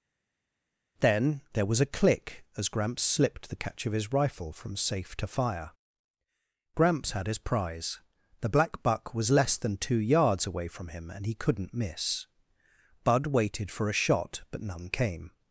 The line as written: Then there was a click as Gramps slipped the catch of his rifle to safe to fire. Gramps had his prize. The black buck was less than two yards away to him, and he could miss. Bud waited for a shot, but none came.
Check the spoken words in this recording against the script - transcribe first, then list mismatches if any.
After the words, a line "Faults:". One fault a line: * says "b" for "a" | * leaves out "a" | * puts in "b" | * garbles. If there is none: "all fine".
Then there was a click as Gramps slipped the catch of his rifle from safe to fire. Gramps had his prize. The black buck was less than two yards away from him, and he couldn't miss. Bud waited for a shot, but none came.
Faults:
* says "from" for "to"
* says "from" for "to"
* says "couldn't" for "could"